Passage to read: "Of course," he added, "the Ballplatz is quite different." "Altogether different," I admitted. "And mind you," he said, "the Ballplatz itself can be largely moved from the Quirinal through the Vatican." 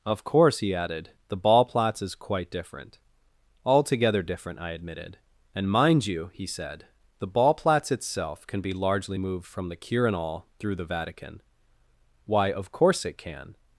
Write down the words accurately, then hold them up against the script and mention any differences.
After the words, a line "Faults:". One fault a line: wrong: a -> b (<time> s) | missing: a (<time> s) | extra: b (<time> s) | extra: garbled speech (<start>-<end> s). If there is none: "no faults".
"Of course," he added, "the Ballplatz is quite different." "Altogether different," I admitted. "And mind you," he said, "the Ballplatz itself can be largely moved from the Quirinal through the Vatican." "Why of course it can
Faults:
extra: Why of course it can (12.2 s)